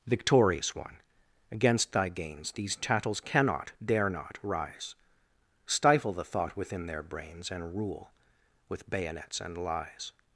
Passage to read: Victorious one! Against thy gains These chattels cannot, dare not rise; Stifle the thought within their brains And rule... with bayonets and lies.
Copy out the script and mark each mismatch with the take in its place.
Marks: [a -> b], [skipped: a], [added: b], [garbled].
Victorious one! Against thy gains These chattels cannot, dare not rise; Stifle the thought within their brains And rule... with bayonets and lies.